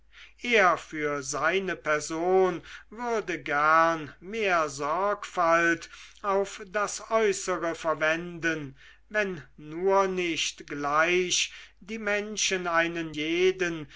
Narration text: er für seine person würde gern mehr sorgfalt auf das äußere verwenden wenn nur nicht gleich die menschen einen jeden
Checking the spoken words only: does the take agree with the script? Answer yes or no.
yes